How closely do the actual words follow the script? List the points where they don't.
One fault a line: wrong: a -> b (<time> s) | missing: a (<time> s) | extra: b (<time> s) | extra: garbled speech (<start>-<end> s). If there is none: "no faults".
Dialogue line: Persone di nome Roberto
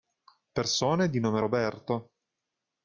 no faults